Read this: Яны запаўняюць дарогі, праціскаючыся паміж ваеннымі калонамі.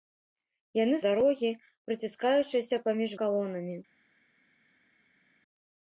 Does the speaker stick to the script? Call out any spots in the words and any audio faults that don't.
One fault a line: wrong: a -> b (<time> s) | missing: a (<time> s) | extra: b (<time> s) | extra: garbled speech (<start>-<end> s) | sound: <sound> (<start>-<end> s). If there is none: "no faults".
missing: запаўняюць (0.9 s)
missing: ваеннымі (3.1 s)